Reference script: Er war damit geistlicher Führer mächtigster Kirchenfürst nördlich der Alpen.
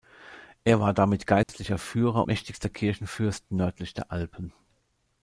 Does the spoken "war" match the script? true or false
true